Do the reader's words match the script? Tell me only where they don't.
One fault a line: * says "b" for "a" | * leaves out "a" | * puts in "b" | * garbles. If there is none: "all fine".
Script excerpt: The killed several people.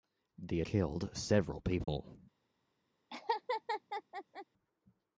all fine